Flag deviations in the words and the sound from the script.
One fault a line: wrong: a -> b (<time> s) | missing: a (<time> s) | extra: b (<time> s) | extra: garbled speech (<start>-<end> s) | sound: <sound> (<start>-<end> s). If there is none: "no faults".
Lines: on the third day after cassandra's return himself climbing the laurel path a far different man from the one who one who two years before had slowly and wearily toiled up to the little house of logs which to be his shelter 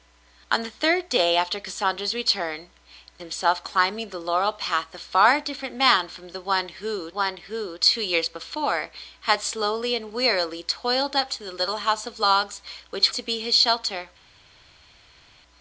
no faults